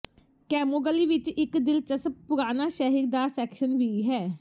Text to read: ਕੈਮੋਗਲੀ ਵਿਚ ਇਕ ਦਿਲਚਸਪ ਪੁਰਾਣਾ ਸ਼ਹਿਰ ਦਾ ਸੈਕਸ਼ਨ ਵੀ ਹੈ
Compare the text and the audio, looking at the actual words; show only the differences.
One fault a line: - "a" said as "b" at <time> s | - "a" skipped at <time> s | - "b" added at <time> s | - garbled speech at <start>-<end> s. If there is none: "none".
none